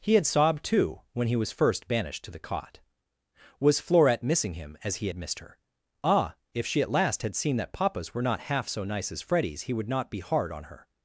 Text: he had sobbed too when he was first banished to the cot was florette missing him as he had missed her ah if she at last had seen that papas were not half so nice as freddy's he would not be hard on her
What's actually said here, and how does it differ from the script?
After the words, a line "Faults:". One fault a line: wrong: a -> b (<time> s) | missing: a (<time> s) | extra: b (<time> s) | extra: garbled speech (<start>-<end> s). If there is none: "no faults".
he had sobbed too when he was first banished to the cot was florette missing him as he had missed her ah if she at last had seen that papas were not half so nice as freddy's he would not be hard on her
Faults:
no faults